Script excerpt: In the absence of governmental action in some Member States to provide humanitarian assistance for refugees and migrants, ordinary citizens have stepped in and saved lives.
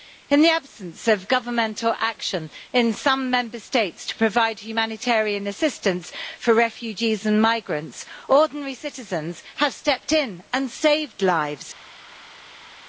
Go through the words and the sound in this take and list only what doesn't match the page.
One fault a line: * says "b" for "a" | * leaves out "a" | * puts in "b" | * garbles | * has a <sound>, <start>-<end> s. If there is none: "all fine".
all fine